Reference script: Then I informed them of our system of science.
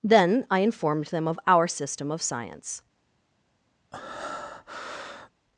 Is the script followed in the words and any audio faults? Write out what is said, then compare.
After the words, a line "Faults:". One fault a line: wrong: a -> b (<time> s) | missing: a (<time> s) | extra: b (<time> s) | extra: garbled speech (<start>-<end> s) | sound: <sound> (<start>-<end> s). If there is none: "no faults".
Then I informed them of our system of science.
Faults:
sound: breath (3.9-5.3 s)